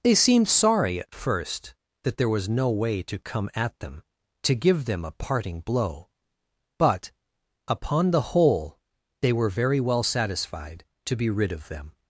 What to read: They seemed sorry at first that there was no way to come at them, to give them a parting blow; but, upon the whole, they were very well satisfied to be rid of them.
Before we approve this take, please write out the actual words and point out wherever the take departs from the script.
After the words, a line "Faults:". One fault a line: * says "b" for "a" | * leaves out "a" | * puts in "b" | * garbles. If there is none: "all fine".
They seemed sorry at first that there was no way to come at them, to give them a parting blow; but, upon the whole, they were very well satisfied to be rid of them.
Faults:
all fine